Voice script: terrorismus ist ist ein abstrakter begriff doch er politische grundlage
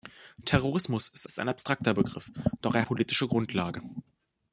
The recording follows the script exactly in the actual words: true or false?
true